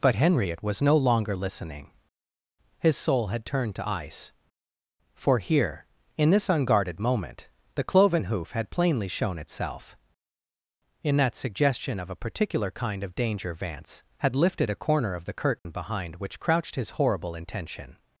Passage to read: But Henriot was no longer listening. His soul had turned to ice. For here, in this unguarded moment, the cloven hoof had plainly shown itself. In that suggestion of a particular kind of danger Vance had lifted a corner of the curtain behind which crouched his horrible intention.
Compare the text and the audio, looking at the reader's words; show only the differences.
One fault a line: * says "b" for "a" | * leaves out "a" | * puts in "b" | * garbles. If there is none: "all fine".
all fine